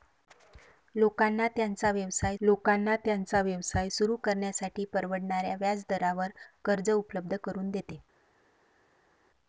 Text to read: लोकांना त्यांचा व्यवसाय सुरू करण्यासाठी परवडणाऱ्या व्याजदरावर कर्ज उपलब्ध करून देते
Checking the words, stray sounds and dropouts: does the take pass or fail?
fail